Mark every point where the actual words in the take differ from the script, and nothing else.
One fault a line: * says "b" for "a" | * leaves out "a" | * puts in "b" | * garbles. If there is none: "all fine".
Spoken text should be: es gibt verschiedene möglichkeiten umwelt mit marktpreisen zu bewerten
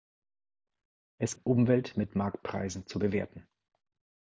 * leaves out "gibt verschiedene möglichkeiten"